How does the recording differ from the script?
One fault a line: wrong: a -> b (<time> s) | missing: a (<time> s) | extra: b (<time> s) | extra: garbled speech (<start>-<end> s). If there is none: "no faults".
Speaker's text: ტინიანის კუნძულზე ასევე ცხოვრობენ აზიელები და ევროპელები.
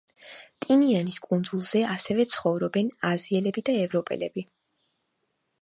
no faults